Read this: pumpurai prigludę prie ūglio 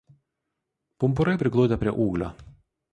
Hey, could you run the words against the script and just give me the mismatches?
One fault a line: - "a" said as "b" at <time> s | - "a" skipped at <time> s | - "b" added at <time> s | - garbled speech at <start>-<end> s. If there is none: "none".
none